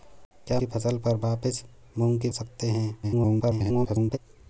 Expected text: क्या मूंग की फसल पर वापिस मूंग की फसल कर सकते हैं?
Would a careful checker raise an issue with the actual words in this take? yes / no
yes